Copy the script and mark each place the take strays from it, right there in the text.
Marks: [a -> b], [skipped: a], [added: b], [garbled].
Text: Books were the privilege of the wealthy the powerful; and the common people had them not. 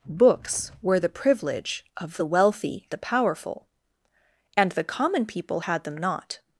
Books were the privilege of the wealthy the powerful; and the common people had them not.